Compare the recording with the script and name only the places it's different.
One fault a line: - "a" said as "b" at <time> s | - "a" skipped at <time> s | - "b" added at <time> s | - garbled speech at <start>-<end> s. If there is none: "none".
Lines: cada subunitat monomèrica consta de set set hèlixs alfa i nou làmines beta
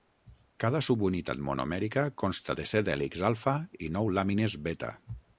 - "set" skipped at 2.9 s